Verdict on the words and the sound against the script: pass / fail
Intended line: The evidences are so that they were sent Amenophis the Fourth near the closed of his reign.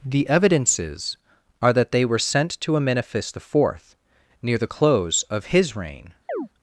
fail